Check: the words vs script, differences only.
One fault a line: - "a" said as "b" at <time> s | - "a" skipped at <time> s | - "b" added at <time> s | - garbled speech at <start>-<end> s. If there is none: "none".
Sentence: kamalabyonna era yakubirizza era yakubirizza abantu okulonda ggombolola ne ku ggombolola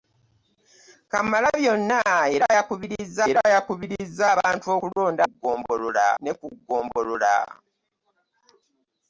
none